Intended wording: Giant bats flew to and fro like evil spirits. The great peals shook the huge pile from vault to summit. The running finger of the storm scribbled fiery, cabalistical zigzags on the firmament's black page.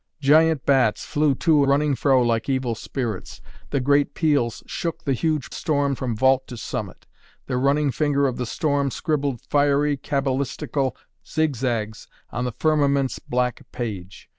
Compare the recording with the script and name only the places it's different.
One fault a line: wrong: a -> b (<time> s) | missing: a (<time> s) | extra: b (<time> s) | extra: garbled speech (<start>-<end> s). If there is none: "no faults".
wrong: and -> running (1.6 s)
wrong: pile -> storm (5.5 s)